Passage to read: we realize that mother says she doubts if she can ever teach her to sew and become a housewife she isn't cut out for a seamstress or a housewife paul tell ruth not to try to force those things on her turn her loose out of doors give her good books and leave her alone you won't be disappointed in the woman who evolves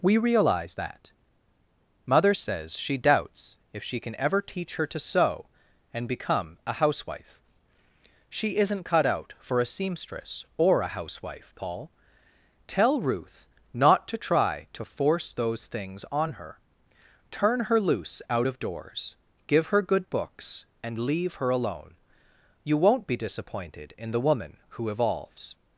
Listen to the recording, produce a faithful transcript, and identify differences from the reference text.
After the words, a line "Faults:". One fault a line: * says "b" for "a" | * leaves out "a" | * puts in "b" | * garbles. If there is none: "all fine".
we realize that mother says she doubts if she can ever teach her to sew and become a housewife she isn't cut out for a seamstress or a housewife paul tell ruth not to try to force those things on her turn her loose out of doors give her good books and leave her alone you won't be disappointed in the woman who evolves
Faults:
all fine